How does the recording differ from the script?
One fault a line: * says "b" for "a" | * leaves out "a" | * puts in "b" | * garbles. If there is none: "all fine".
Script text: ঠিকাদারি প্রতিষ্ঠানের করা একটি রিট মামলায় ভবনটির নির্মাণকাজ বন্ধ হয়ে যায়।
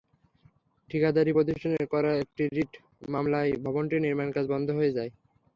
all fine